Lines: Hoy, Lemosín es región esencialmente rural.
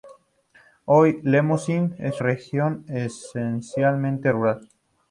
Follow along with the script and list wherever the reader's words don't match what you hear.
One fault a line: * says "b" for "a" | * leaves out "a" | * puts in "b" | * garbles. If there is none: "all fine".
all fine